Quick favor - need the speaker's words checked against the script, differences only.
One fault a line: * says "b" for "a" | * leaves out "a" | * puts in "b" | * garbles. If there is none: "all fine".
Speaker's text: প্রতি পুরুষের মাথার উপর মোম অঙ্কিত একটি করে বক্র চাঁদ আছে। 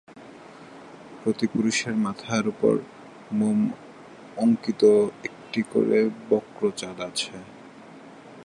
all fine